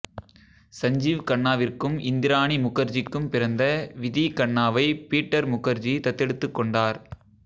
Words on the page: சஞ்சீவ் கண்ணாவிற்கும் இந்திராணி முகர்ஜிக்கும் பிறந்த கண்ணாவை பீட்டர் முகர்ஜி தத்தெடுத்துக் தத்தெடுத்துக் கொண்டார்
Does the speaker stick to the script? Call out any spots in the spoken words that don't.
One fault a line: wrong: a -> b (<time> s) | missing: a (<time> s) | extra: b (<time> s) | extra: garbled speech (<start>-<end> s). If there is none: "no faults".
extra: விதி (4.0 s)
missing: தத்தெடுத்துக் (6.6 s)